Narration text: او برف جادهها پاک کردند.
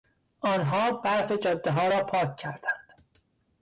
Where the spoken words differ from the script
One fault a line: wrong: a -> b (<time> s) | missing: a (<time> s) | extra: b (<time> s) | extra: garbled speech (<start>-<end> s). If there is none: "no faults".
wrong: او -> آنها (0.4 s)
extra: را (1.9 s)